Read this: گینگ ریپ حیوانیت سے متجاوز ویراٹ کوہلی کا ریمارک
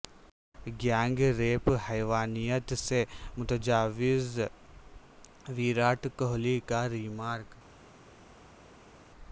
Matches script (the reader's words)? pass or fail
pass